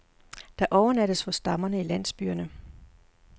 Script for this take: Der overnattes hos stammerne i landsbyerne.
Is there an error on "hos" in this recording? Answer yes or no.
no